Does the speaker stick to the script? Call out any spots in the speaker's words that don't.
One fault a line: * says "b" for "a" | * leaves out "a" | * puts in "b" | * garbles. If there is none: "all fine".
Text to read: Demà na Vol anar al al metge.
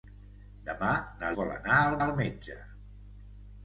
all fine